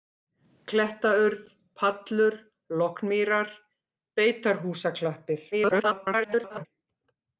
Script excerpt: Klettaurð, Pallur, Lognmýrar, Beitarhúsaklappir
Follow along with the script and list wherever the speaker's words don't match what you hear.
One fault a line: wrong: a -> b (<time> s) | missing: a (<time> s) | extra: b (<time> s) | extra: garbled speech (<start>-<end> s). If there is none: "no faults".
extra: garbled speech (5.5-6.7 s)